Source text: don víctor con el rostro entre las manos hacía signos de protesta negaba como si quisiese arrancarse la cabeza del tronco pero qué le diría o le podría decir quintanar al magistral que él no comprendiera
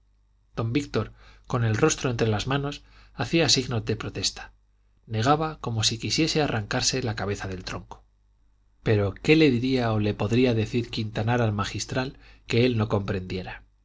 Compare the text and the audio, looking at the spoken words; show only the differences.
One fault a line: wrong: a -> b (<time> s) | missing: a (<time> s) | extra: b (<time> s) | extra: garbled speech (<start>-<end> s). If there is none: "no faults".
no faults